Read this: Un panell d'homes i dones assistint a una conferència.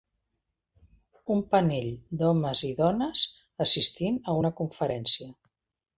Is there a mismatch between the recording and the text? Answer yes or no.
no